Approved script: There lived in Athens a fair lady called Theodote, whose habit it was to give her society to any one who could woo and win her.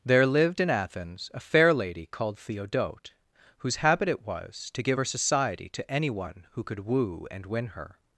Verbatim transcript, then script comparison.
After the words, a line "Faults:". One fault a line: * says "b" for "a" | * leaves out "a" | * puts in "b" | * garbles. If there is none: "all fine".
There lived in Athens a fair lady called Theodote, whose habit it was to give her society to any one who could woo and win her.
Faults:
all fine